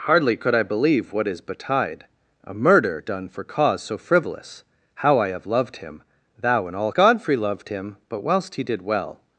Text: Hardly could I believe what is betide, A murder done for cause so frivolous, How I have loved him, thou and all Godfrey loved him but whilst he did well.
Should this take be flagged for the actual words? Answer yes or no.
no